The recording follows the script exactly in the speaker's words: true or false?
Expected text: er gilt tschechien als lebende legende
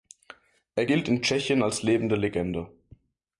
false